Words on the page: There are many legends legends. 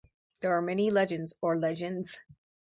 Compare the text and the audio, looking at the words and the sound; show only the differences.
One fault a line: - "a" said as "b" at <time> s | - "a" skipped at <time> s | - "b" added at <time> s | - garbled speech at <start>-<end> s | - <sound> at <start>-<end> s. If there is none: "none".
- "or" added at 1.4 s